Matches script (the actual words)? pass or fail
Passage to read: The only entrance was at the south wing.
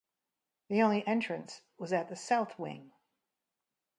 pass